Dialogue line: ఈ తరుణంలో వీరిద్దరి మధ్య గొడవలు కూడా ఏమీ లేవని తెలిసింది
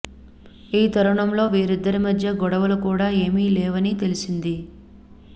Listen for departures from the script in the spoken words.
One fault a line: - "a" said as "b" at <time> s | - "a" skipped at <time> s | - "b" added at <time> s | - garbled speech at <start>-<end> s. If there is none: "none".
none